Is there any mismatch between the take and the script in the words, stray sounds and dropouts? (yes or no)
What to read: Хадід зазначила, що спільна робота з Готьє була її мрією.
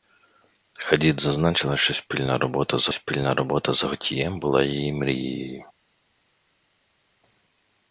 yes